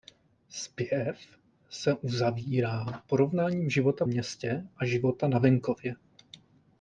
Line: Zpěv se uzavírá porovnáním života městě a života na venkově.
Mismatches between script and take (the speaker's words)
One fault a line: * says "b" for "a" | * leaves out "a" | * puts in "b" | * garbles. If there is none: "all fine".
all fine